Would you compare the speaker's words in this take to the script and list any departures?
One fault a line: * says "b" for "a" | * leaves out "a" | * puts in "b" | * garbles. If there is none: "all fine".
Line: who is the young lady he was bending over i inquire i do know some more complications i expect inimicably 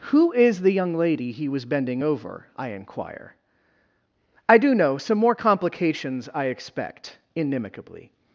all fine